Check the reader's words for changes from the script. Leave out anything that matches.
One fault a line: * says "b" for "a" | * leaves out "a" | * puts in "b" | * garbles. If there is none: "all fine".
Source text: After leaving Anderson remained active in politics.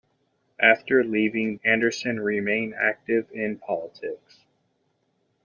all fine